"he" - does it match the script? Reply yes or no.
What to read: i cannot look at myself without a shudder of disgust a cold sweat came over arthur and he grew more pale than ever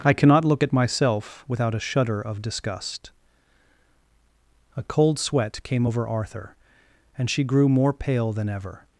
no